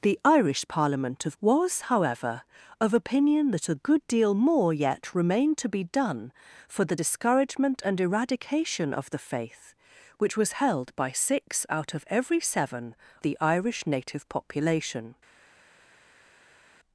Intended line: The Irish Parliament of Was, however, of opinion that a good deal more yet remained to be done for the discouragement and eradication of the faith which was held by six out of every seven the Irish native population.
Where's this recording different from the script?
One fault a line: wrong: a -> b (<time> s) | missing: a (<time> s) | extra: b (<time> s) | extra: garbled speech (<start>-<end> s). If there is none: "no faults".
no faults